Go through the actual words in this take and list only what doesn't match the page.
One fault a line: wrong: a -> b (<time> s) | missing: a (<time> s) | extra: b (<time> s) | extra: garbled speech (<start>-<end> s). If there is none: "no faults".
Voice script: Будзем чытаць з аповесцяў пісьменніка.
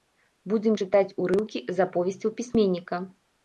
extra: урыўкі (1.3 s)